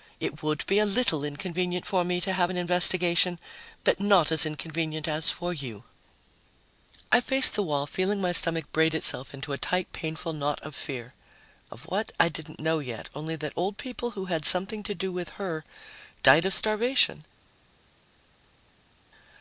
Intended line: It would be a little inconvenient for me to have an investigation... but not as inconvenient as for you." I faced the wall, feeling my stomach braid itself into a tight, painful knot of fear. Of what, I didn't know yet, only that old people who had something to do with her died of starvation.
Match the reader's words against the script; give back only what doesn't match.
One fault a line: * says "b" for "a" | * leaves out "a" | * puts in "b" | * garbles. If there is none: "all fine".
all fine